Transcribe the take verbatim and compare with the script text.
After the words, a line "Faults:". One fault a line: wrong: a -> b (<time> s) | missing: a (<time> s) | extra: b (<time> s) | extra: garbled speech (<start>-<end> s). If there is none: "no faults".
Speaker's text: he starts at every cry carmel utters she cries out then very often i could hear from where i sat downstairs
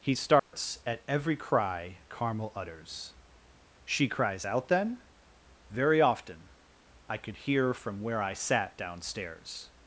he starts at every cry carmel utters she cries out then very often i could hear from where i sat downstairs
Faults:
no faults